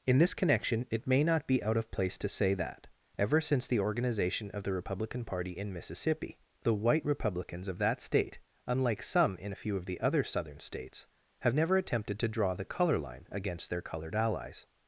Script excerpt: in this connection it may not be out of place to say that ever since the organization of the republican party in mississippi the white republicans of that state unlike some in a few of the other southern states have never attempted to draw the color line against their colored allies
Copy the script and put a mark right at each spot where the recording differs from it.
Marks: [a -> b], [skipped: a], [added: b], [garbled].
in this connection it may not be out of place to say that ever since the organization of the republican party in mississippi the white republicans of that state unlike some in a few of the other southern states have never attempted to draw the color line against their colored allies